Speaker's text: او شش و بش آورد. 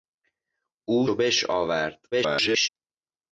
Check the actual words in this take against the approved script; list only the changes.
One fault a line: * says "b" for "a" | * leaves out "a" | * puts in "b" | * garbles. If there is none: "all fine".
* leaves out "شش"
* garbles